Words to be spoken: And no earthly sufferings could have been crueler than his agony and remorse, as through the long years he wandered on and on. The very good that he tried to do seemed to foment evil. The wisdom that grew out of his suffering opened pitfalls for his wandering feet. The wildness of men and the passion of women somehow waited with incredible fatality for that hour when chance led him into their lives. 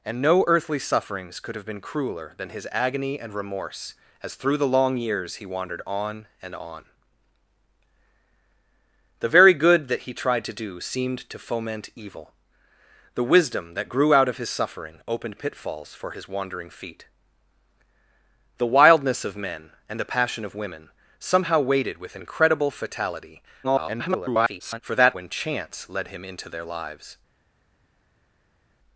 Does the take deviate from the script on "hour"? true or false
true